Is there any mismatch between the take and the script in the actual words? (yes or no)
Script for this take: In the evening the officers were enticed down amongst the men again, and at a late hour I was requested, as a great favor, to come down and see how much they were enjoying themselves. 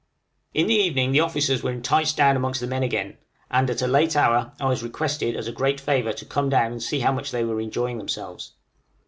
no